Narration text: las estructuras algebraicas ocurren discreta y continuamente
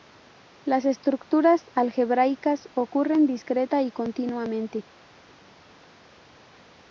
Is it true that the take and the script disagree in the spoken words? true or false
false